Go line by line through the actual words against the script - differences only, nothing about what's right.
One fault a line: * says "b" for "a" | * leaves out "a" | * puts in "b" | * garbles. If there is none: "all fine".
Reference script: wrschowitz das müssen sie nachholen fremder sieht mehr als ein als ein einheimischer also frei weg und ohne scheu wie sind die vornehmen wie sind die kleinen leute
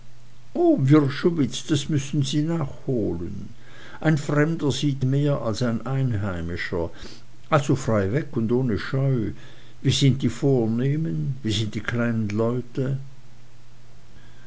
* puts in "ein"
* leaves out "als ein"